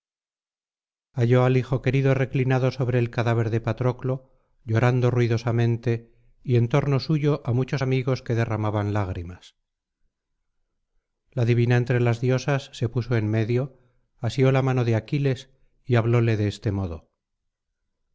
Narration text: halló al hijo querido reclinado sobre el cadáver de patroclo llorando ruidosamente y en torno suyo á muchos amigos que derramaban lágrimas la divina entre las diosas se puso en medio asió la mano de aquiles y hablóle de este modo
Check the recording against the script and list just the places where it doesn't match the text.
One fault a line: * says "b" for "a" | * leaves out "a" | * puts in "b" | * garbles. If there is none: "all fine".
all fine